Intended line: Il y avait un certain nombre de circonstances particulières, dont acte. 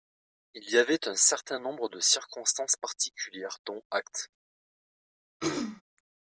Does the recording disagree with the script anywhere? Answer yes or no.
no